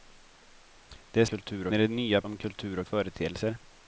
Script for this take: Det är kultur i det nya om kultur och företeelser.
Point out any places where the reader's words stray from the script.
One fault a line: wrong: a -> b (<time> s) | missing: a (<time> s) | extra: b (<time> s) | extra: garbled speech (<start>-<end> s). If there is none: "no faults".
no faults